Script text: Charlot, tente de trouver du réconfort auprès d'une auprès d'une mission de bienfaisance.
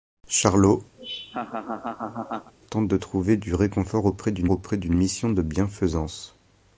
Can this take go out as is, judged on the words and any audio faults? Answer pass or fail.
fail